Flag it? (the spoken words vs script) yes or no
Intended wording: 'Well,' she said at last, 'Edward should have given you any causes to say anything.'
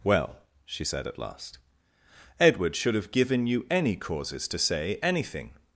no